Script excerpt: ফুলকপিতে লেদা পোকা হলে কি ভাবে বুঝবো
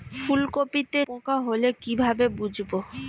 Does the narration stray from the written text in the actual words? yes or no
yes